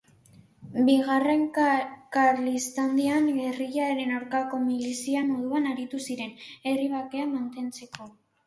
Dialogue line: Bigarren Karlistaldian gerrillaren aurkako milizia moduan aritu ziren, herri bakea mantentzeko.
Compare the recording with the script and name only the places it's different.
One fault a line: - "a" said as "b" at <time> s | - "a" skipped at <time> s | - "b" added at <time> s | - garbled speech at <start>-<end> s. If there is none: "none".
none